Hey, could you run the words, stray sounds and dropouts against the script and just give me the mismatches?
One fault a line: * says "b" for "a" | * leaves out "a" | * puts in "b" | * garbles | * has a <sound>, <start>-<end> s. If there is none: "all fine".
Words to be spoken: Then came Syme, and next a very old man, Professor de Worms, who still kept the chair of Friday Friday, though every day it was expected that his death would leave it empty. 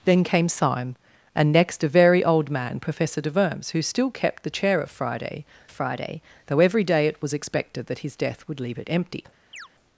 * has a chirp, 9.5-9.7 s